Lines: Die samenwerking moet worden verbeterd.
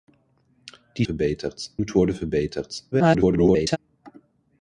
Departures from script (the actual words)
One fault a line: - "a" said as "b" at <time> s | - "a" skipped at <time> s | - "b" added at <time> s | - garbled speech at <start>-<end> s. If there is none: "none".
- "samenwerking" said as "verbeterd" at 1.0 s
- garbled speech at 2.9-3.8 s